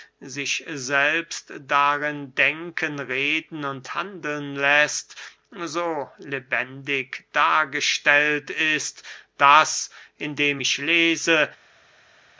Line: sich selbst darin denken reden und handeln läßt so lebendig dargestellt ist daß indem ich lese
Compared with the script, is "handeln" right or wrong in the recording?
right